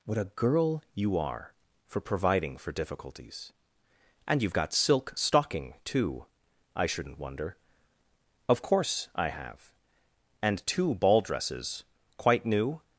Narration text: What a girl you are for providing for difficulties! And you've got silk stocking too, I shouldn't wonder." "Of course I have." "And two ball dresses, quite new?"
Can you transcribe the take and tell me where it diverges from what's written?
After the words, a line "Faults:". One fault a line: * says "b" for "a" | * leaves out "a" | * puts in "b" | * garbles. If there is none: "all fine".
What a girl you are for providing for difficulties! And you've got silk stocking too, I shouldn't wonder." "Of course I have." "And two ball dresses, quite new?"
Faults:
all fine